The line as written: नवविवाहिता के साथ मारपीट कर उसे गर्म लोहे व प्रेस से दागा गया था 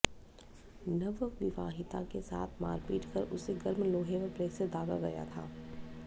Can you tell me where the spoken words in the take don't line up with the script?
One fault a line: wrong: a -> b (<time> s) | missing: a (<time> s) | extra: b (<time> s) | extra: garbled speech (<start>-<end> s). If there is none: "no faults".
no faults